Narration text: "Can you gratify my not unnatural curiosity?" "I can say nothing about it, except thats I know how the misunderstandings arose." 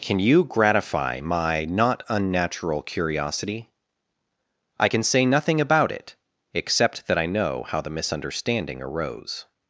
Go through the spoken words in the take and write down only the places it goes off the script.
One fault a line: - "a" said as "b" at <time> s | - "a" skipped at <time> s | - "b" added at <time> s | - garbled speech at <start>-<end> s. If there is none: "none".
- "thats" said as "that" at 7.1 s
- "misunderstandings" said as "misunderstanding" at 7.9 s